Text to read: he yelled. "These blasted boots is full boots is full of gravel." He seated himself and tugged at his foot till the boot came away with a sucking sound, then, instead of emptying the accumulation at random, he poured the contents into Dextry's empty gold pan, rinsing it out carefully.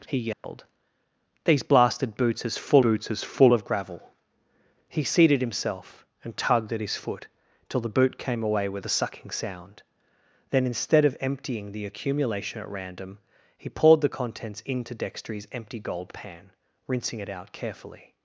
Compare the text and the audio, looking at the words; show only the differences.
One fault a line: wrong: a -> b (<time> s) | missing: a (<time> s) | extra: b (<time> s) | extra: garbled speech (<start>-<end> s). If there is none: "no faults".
no faults